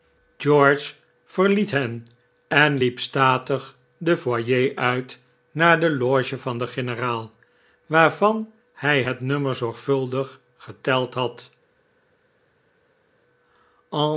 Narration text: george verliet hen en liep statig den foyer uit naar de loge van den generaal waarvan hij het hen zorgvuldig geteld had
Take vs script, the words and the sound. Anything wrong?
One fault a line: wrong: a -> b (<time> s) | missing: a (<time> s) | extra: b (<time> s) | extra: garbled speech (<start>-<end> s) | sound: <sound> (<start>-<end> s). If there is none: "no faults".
wrong: hen -> nummer (9.2 s)